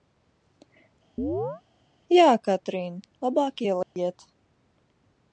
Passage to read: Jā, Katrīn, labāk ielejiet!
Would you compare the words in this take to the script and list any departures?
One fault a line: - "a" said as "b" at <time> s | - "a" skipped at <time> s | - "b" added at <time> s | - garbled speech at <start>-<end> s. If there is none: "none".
none